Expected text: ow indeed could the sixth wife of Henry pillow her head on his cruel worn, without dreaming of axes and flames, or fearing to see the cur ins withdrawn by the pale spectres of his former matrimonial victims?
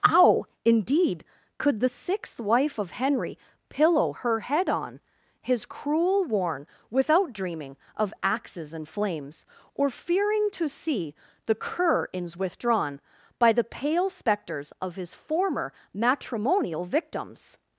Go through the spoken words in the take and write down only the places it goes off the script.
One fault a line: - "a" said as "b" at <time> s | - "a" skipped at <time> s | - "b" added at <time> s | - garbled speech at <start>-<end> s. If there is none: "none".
none